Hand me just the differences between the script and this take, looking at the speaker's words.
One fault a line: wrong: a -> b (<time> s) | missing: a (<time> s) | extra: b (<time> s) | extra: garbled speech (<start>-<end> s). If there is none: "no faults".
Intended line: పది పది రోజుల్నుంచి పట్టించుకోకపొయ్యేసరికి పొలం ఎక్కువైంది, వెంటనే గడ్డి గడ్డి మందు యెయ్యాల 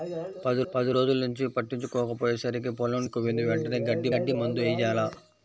no faults